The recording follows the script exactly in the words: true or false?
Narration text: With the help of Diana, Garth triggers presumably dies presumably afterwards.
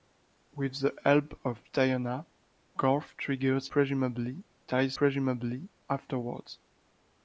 true